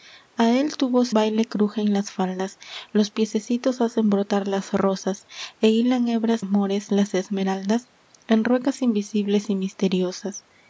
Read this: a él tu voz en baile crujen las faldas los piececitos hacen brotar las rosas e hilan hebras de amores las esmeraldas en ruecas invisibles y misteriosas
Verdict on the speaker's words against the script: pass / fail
fail